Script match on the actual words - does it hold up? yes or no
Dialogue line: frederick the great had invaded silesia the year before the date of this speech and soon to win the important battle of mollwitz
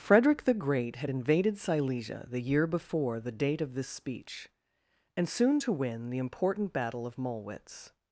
yes